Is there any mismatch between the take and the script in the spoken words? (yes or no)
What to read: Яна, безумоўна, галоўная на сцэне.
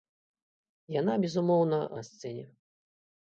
yes